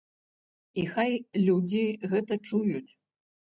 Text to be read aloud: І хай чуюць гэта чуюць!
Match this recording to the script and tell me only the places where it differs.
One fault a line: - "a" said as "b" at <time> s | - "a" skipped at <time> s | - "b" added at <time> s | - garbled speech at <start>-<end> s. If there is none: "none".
- "чуюць" said as "людзі" at 1.4 s